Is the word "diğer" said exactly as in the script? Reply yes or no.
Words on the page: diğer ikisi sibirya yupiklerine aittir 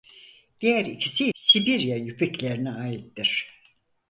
yes